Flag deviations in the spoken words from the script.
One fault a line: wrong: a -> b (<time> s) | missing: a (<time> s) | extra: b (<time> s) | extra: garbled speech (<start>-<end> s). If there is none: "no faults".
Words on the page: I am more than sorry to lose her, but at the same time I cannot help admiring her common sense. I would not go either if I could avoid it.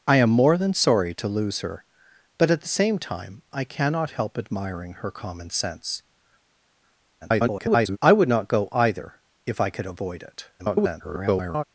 extra: garbled speech (7.2-8.0 s)
extra: garbled speech (10.6-11.6 s)